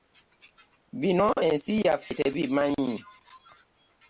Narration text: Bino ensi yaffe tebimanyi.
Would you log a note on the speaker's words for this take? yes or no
no